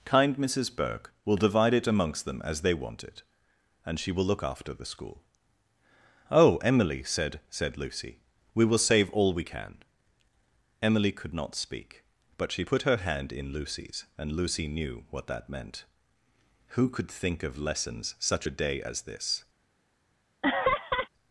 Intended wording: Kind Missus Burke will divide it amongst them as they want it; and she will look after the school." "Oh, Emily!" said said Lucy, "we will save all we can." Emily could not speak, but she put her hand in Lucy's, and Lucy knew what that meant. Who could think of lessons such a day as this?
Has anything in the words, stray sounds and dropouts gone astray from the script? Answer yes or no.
yes